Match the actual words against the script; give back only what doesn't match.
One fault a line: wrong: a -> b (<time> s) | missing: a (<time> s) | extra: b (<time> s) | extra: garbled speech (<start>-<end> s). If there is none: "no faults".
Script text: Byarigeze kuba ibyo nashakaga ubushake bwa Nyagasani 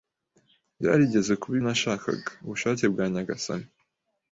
missing: ibyo (1.6 s)